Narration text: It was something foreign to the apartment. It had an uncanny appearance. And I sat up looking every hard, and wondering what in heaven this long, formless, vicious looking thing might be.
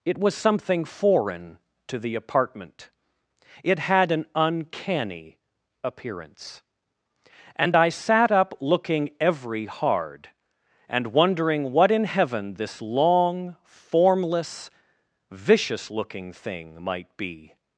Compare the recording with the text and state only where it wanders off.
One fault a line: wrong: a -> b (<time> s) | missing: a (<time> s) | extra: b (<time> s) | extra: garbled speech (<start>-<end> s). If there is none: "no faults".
no faults